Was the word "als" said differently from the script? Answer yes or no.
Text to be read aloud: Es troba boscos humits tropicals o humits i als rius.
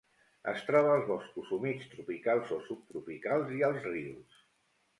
no